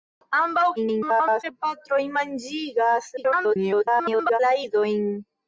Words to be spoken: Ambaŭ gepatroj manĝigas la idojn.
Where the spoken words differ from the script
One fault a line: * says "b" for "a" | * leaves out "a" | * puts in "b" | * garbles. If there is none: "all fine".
* garbles
* garbles